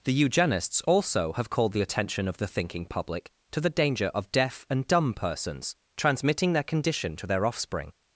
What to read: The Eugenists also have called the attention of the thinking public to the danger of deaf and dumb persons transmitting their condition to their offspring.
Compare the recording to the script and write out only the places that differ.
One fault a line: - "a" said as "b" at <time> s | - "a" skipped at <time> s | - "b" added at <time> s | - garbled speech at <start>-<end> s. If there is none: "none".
none